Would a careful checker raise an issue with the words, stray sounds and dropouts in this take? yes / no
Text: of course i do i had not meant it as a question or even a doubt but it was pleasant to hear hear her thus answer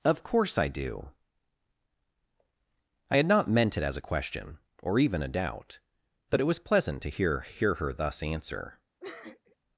yes